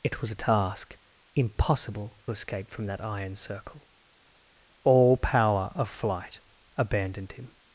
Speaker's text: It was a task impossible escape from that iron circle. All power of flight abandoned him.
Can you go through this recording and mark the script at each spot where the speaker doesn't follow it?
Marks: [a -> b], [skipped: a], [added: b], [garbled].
It was a task impossible escape from that iron circle. All power of flight abandoned him.